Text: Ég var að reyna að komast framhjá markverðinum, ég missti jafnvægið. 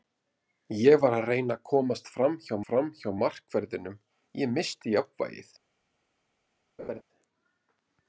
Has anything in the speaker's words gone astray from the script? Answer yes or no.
yes